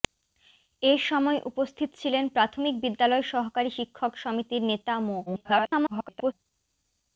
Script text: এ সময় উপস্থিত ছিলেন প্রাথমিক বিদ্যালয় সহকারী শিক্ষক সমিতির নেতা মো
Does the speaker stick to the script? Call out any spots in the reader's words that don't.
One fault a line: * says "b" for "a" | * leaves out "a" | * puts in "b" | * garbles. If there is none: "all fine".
* garbles